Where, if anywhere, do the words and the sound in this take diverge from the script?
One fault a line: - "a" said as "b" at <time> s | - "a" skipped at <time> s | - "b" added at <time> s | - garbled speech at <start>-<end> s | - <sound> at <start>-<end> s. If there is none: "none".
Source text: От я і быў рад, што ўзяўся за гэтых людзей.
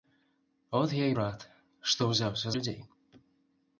- "быў" skipped at 1.2 s
- "за гэтых" skipped at 2.5 s